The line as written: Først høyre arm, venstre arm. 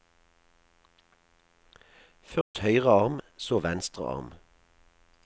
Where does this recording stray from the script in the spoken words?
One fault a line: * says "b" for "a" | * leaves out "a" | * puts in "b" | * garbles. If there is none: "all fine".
* puts in "så"